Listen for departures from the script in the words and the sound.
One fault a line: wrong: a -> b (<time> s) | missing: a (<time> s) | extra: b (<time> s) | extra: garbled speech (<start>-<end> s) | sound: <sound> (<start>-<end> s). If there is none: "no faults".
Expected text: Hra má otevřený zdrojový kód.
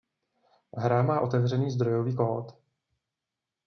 no faults